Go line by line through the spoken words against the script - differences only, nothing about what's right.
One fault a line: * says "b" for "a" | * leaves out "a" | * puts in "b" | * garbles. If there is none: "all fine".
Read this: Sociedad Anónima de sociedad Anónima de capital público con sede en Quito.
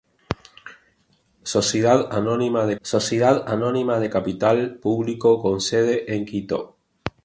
all fine